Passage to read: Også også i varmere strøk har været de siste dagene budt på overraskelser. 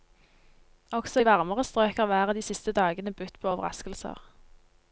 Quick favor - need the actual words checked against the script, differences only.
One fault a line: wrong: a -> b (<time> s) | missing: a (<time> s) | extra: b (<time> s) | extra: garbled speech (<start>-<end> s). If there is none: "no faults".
missing: også (1.2 s)